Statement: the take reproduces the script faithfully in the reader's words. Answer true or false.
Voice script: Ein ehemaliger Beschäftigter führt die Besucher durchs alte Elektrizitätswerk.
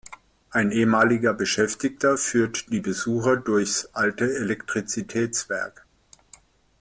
true